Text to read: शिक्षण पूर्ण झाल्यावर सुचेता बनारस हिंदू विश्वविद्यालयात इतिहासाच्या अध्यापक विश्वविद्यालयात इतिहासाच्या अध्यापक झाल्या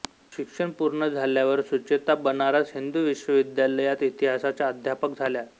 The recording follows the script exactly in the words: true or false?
false